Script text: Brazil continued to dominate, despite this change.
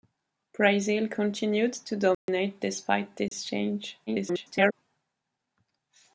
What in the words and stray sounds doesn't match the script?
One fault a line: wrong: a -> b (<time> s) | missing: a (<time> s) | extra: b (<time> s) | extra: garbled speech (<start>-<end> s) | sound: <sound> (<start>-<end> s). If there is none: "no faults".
sound: dropout (2.1-2.3 s)
sound: dropout (3.3-3.3 s)
extra: garbled speech (4.1-4.7 s)